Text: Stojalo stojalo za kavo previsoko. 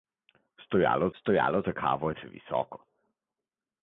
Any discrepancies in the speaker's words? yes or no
no